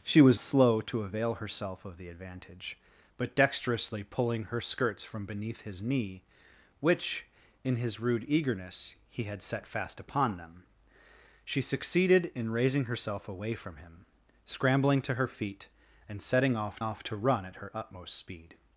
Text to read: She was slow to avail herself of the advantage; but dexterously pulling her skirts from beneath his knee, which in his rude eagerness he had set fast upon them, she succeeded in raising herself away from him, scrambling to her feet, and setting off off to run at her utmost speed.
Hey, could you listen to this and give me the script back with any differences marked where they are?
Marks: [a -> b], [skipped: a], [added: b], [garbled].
She was slow to avail herself of the advantage; but dexterously pulling her skirts from beneath his knee, which in his rude eagerness he had set fast upon them, she succeeded in raising herself away from him, scrambling to her feet, and setting off off to run at her utmost speed.